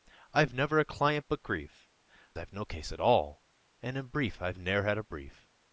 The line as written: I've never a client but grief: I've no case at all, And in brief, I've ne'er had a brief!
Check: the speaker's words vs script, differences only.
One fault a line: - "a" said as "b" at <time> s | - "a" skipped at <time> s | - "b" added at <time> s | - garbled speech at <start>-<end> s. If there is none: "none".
none